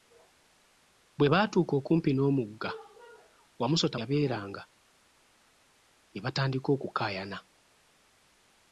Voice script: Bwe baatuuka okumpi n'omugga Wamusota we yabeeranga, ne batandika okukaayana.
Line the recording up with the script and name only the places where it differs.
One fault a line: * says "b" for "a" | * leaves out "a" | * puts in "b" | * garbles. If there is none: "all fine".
* leaves out "we"